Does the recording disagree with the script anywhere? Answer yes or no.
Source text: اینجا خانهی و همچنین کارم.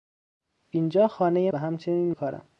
no